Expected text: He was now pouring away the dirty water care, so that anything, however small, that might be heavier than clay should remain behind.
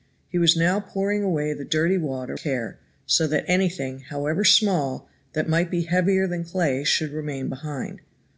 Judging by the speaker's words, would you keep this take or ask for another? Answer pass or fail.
pass